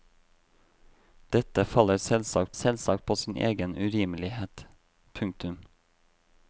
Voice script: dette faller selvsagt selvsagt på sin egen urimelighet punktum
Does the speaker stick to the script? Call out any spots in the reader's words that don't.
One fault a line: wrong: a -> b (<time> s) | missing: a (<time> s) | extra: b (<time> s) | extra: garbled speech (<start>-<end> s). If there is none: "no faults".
no faults